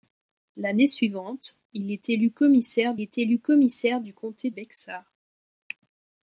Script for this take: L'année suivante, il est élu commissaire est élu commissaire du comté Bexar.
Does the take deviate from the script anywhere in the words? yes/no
no